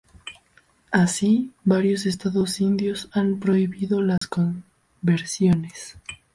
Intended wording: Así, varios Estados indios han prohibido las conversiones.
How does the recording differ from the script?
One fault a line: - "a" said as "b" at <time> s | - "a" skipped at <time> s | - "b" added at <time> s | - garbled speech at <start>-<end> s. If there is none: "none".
none